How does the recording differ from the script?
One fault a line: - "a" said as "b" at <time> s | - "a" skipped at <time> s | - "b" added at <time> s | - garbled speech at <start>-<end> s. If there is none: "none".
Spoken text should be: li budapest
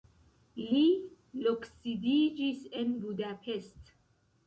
- "loksidiĝis en" added at 1.5 s